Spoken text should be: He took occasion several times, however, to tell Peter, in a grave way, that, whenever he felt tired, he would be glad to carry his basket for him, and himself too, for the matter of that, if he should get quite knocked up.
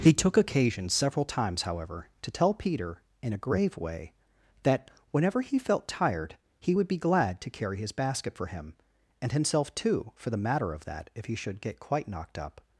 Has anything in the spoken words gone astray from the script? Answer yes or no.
no